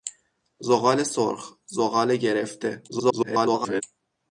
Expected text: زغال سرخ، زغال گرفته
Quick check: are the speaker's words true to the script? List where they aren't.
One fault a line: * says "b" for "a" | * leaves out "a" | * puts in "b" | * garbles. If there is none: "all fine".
* garbles